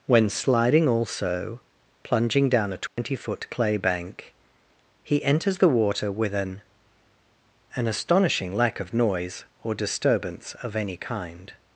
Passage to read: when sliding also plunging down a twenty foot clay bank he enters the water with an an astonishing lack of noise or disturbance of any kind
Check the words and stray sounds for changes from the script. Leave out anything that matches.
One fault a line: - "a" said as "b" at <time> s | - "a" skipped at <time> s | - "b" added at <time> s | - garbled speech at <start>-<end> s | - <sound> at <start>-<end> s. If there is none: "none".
- dropout at 2.9-3.0 s